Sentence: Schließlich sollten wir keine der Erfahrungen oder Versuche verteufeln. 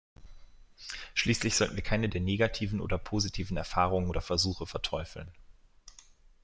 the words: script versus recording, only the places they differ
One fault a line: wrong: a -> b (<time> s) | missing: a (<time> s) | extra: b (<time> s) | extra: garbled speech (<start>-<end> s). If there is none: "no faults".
extra: negativen oder positiven (2.2 s)